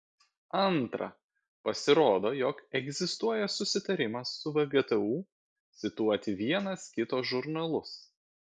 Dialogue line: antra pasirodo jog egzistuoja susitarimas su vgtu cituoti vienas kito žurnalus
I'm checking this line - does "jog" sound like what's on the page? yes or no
yes